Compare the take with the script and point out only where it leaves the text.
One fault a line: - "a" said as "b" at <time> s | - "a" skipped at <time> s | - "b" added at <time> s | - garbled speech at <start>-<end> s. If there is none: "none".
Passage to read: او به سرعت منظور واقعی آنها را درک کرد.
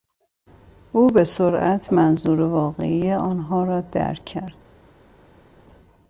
none